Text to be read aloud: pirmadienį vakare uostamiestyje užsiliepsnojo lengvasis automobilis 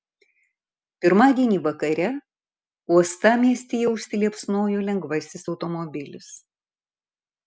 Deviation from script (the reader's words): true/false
false